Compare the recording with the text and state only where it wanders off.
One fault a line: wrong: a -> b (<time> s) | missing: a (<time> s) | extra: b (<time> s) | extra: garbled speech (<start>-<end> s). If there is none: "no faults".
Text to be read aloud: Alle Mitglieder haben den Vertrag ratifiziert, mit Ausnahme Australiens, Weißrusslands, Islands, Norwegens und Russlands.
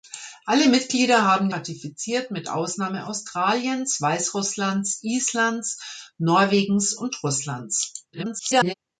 missing: den Vertrag (1.5 s)
extra: garbled speech (8.1-8.7 s)